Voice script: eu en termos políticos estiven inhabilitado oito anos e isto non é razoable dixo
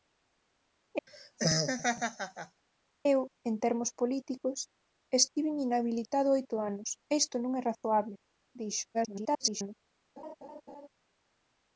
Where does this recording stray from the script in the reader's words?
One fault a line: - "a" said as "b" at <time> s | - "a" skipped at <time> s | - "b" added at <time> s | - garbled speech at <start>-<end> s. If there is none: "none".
- garbled speech at 8.9-9.8 s